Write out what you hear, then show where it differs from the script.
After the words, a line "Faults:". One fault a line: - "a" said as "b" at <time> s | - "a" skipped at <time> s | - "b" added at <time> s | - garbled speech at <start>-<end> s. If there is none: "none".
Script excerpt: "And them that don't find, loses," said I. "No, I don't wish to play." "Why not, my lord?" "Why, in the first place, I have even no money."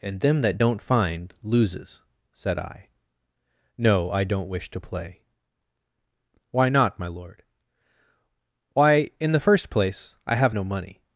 "And them that don't find, loses," said I. "No, I don't wish to play." "Why not, my lord?" "Why, in the first place, I have no money."
Faults:
- "even" skipped at 10.6 s